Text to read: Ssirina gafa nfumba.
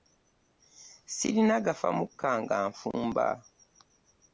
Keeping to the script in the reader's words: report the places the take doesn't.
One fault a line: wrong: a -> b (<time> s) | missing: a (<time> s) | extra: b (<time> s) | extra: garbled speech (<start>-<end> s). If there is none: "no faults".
extra: mukka nga (2.0 s)